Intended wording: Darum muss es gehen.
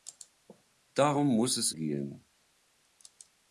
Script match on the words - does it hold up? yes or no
yes